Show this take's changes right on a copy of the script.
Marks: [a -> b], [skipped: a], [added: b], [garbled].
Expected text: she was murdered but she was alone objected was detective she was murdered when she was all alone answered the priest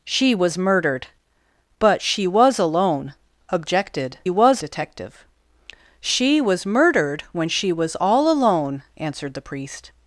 she was murdered but she was alone objected was detective she was murdered when she was all alone answered the priest